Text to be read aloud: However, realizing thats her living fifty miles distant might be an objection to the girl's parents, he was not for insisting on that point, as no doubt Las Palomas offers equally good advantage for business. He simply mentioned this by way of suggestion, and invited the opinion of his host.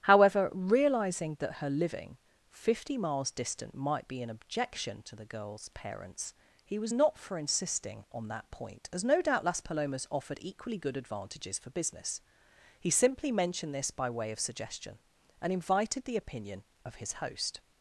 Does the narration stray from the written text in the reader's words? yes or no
yes